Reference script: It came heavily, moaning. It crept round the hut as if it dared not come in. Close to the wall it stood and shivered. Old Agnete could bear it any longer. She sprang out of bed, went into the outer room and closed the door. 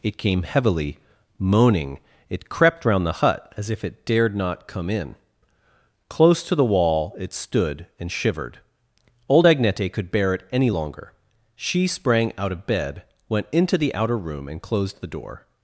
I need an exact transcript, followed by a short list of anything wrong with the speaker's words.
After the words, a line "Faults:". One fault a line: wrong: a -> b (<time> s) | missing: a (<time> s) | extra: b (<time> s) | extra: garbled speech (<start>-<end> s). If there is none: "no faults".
It came heavily, moaning. It crept round the hut as if it dared not come in. Close to the wall it stood and shivered. Old Agnete could bear it any longer. She sprang out of bed, went into the outer room and closed the door.
Faults:
no faults